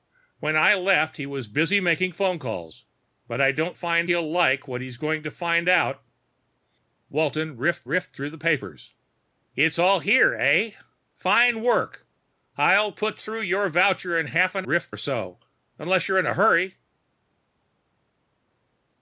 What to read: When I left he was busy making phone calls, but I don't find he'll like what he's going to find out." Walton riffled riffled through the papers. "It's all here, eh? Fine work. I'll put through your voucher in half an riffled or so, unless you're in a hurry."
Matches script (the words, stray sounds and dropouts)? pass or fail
pass